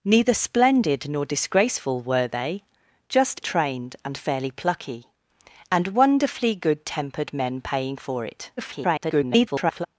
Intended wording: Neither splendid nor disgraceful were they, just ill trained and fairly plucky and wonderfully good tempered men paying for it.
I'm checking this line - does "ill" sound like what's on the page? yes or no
no